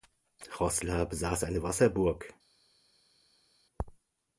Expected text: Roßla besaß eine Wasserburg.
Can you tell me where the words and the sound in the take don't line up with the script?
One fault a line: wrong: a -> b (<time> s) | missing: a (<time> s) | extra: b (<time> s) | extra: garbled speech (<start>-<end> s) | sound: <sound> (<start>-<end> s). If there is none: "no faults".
no faults